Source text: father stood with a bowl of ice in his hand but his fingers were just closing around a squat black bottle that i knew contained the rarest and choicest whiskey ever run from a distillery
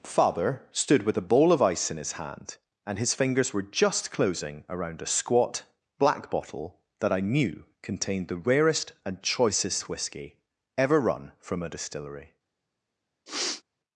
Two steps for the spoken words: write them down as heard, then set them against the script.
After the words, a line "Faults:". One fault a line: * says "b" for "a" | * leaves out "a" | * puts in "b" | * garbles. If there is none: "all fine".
father stood with a bowl of ice in his hand and his fingers were just closing around a squat black bottle that i knew contained the rarest and choicest whiskey ever run from a distillery
Faults:
* says "and" for "but"